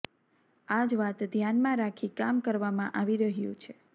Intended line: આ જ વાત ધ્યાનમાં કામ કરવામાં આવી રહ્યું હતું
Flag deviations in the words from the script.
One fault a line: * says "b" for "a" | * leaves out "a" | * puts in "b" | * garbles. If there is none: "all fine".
* puts in "રાખી"
* says "છે" for "હતું"